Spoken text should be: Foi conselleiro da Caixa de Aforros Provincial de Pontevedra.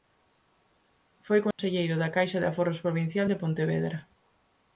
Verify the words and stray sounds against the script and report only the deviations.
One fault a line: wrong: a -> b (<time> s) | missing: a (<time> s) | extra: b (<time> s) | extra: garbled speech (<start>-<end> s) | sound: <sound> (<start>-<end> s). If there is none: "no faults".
sound: dropout (1.5-1.6 s)